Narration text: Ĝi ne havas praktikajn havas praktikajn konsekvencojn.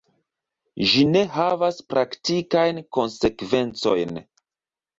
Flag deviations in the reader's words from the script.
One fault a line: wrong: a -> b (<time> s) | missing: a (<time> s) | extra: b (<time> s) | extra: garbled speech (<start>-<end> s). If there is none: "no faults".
missing: havas praktikajn (2.8 s)